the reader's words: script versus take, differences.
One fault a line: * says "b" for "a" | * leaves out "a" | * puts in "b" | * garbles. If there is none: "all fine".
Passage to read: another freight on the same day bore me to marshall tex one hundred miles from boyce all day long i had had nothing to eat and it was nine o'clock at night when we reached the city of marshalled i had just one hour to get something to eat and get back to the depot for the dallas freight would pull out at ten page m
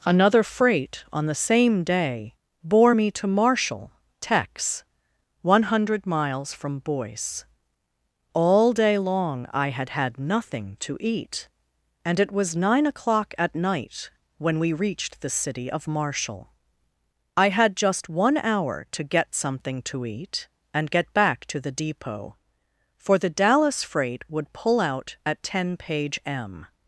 * says "marshall" for "marshalled"